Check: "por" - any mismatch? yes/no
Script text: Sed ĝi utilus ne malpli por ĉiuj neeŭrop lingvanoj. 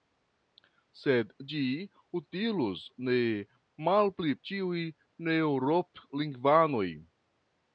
yes